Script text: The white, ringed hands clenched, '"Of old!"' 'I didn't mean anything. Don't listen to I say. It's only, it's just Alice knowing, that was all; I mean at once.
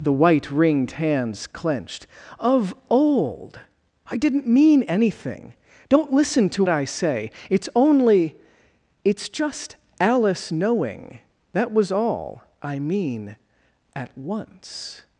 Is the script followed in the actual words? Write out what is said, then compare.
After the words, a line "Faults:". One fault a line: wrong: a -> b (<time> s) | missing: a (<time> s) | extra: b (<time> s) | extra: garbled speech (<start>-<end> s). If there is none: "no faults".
The white, ringed hands clenched, '"Of old!"' 'I didn't mean anything. Don't listen to I say. It's only, it's just Alice knowing, that was all; I mean at once.
Faults:
no faults